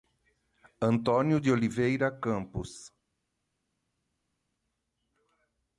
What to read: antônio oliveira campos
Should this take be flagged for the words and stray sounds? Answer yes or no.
yes